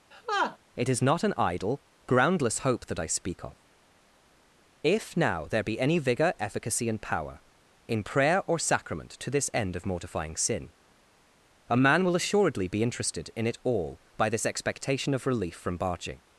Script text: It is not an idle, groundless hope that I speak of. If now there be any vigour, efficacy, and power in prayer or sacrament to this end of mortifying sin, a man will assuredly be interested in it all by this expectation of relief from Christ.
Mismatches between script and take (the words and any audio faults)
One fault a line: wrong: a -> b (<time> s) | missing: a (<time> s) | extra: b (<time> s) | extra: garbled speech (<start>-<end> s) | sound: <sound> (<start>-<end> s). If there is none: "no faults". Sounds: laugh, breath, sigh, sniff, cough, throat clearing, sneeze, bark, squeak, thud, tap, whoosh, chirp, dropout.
sound: laugh (0.1-0.6 s)
wrong: Christ -> Barging (15.8 s)